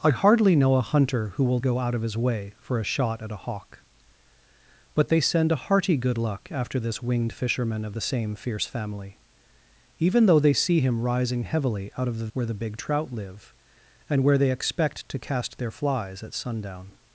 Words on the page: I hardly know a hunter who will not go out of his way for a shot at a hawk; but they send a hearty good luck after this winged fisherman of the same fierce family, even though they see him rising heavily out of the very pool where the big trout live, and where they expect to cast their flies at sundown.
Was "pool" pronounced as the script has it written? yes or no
no